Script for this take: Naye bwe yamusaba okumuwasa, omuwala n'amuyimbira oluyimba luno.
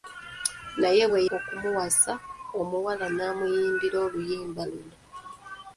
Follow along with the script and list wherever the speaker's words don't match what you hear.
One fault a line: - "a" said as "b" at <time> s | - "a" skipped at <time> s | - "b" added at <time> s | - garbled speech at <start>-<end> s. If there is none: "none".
- "yamusaba" skipped at 1.2 s